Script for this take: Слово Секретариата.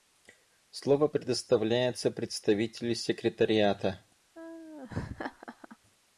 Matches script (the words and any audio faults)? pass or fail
fail